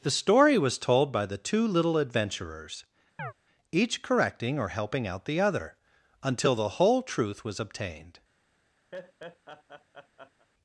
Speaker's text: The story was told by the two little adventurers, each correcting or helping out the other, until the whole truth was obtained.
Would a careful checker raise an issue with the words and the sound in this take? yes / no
yes